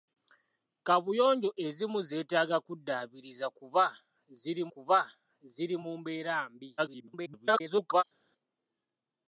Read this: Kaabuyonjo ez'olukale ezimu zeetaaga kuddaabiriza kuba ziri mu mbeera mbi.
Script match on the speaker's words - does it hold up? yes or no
no